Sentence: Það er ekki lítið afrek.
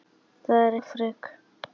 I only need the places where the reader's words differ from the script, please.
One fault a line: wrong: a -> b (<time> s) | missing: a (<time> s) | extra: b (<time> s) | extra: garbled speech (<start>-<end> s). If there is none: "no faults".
missing: ekki lítið (0.8 s)